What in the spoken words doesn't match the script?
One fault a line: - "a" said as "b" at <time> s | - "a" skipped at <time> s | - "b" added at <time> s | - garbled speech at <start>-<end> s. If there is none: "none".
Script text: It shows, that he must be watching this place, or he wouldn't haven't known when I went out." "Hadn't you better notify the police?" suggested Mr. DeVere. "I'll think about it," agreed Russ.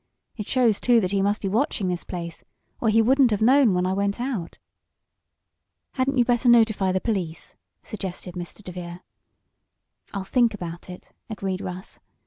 - "too" added at 0.8 s
- "haven't" said as "have" at 3.3 s